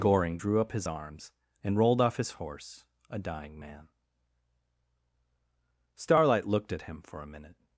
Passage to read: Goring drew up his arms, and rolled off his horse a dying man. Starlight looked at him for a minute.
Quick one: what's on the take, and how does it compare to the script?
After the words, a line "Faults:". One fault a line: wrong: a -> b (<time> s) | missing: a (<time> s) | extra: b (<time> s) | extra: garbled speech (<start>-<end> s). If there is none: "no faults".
Goring drew up his arms, and rolled off his horse a dying man. Starlight looked at him for a minute.
Faults:
no faults